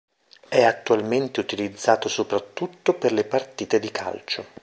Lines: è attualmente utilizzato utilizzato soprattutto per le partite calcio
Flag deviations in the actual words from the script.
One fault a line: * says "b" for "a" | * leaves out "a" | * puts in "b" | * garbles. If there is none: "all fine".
* leaves out "utilizzato"
* puts in "di"